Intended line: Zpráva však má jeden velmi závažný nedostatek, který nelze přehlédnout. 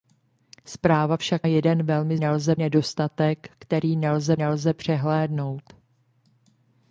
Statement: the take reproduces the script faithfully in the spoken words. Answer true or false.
false